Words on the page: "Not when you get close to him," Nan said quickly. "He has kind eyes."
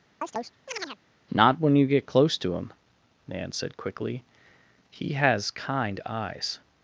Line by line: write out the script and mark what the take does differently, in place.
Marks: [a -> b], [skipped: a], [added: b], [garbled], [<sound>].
[chirp] "Not when you get close to him," Nan said quickly. "He has kind eyes."